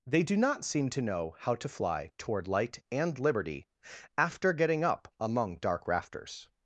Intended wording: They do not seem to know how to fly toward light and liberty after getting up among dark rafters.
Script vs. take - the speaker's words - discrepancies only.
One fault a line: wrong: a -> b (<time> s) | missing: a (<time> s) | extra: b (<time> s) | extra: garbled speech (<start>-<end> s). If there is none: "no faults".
no faults